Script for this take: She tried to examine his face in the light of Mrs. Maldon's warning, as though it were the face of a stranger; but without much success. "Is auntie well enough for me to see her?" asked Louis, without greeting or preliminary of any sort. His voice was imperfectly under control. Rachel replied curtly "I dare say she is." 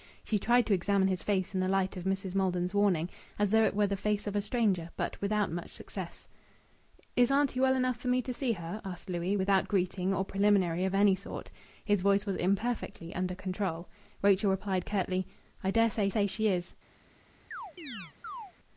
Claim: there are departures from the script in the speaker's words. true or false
true